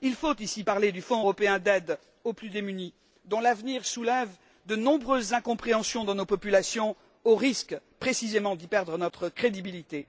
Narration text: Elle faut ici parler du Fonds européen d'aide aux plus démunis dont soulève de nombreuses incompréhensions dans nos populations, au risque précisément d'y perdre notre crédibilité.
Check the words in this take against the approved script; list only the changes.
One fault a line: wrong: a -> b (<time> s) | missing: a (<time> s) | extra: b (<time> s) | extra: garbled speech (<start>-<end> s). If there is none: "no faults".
wrong: Elle -> Il (0.0 s)
extra: l'avenir (3.4 s)